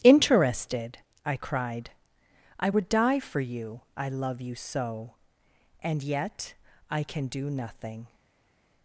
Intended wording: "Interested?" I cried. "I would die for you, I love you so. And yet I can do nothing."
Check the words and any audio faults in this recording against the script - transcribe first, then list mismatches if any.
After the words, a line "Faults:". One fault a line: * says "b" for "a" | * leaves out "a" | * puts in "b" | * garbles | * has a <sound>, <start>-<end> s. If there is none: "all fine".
"Interested?" I cried. "I would die for you, I love you so. And yet I can do nothing."
Faults:
all fine